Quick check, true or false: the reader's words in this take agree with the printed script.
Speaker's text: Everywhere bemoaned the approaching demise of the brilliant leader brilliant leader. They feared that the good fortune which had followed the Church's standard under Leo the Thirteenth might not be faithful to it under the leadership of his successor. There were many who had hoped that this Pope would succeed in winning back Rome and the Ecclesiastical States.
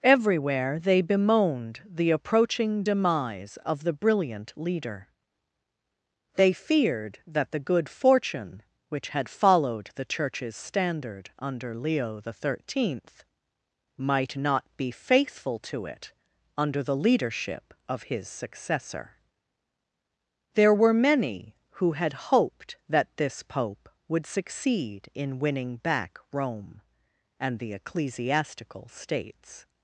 false